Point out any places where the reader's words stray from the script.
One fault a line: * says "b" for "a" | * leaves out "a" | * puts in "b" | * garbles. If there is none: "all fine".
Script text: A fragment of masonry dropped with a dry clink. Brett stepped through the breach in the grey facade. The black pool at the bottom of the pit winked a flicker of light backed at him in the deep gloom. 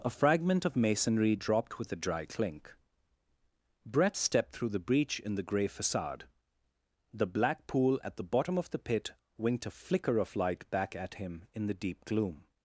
* says "back" for "backed"